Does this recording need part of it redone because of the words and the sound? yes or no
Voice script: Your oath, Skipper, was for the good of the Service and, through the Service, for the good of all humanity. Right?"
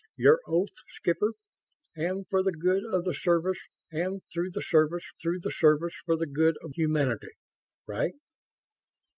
yes